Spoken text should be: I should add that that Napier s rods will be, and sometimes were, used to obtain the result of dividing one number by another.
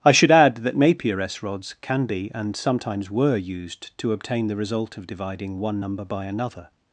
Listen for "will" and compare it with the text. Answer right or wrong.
wrong